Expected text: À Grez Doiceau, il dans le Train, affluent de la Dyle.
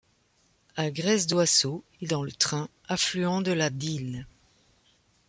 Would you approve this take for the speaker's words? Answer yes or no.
yes